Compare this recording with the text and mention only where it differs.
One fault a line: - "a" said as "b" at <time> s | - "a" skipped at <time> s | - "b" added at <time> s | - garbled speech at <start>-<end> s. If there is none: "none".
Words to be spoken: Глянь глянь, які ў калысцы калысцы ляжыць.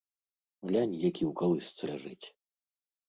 - "глянь" skipped at 0.9 s
- "калысцы" skipped at 1.8 s